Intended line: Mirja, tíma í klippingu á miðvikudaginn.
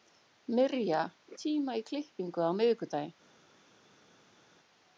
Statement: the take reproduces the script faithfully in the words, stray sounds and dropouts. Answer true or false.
true